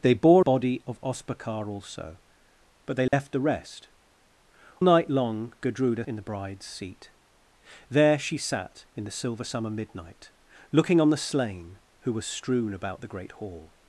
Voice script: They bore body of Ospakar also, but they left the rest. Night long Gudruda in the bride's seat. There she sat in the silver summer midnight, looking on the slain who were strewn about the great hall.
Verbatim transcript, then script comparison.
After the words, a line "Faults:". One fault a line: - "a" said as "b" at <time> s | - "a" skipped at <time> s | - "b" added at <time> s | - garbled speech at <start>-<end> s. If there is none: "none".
They bore body of Ospakar also, but they left the rest. Night long Gudruda in the bride's seat. There she sat in the silver summer midnight, looking on the slain who were strewn about the great hall.
Faults:
none